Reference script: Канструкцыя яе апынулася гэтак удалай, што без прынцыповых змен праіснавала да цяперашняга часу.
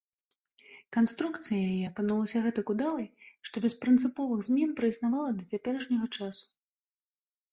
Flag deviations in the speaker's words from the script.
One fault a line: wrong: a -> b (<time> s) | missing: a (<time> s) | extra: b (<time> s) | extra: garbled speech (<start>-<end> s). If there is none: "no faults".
no faults